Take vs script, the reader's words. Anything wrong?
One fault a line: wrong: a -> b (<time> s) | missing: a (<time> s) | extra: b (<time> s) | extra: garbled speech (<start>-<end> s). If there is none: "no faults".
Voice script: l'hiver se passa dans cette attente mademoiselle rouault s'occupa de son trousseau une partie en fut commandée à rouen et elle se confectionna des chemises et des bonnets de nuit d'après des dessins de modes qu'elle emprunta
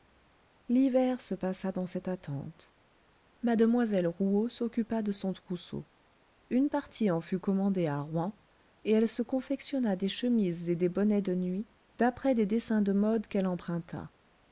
no faults